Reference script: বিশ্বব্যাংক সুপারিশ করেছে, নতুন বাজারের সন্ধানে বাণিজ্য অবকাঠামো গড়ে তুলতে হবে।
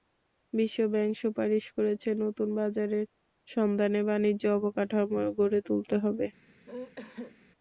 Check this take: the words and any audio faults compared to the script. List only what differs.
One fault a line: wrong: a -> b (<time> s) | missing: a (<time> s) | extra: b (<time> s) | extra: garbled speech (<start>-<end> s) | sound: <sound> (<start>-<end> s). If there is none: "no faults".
sound: sneeze (6.7-7.4 s)